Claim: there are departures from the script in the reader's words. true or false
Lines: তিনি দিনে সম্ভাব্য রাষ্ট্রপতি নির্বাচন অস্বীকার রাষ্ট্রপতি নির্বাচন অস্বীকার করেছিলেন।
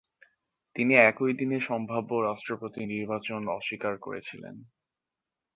true